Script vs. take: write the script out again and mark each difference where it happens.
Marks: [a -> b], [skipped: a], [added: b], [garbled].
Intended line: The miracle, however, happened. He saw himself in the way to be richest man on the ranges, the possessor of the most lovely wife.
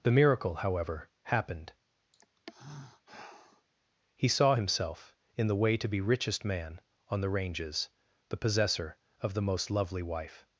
The miracle, however, happened. He saw himself in the way to be richest man on the ranges, the possessor of the most lovely wife.